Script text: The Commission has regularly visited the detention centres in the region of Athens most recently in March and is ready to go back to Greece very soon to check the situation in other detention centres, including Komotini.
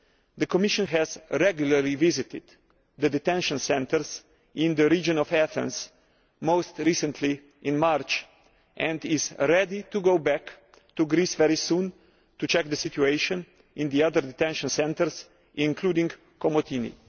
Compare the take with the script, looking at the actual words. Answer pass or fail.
fail